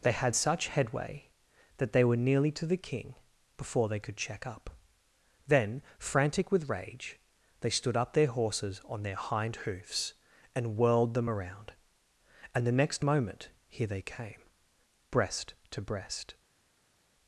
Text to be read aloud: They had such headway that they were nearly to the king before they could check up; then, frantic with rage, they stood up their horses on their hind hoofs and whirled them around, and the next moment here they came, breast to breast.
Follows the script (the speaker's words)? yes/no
yes